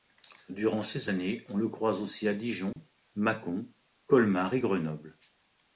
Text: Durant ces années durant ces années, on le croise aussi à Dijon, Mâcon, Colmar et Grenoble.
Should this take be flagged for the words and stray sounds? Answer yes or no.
yes